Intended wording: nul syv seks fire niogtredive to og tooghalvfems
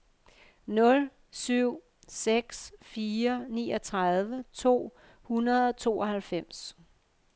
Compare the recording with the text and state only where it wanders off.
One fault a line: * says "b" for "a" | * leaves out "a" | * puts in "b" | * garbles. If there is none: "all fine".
* puts in "hundrede"